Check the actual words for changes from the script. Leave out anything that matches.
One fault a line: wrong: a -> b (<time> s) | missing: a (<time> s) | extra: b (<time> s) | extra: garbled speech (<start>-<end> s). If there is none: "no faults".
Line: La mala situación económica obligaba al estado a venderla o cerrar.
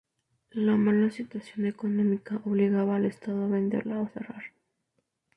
no faults